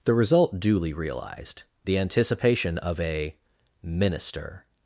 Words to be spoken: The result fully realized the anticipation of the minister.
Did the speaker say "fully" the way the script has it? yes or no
no